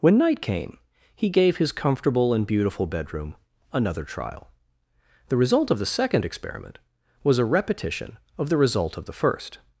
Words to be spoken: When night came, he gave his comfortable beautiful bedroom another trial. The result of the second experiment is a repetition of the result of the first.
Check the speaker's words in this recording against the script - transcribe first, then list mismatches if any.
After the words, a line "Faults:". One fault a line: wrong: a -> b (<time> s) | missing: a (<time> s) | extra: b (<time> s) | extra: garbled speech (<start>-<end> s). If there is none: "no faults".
When night came, he gave his comfortable and beautiful bedroom another trial. The result of the second experiment was a repetition of the result of the first.
Faults:
extra: and (2.3 s)
wrong: is -> was (7.2 s)